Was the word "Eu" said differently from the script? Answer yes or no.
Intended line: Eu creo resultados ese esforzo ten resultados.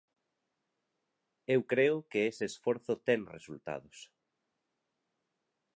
no